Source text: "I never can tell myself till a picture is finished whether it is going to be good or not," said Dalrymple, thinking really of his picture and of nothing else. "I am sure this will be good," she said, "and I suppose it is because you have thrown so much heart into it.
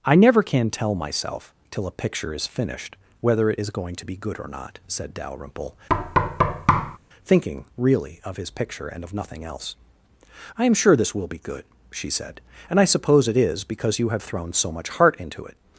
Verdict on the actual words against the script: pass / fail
pass